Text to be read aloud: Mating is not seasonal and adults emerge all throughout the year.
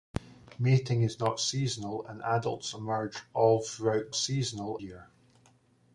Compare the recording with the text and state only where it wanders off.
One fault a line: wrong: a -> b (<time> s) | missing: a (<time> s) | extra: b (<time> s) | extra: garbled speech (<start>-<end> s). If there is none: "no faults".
wrong: the -> seasonal (4.1 s)